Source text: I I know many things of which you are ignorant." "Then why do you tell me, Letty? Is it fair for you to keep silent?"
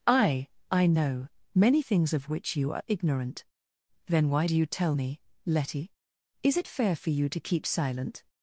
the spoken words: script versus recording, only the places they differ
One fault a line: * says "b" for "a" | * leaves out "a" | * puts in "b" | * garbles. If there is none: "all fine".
all fine